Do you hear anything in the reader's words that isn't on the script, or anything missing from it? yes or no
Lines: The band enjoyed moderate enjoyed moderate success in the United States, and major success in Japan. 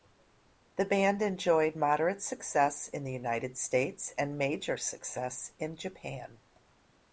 yes